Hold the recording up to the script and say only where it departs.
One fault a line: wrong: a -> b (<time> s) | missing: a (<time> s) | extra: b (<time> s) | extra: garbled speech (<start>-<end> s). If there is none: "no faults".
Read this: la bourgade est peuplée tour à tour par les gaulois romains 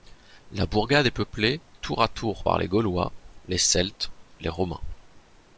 extra: les celtes les (3.5 s)